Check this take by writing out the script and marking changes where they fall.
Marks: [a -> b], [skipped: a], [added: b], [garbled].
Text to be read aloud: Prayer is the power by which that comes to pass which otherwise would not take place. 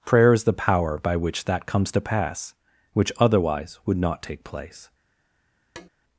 Prayer is the power by which that comes to pass which otherwise would not take place.